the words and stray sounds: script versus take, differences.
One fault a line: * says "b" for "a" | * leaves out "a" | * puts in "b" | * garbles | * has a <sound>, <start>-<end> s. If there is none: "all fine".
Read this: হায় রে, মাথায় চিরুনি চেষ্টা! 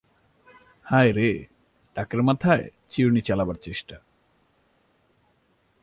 * puts in "টাকের"
* puts in "চালাবার"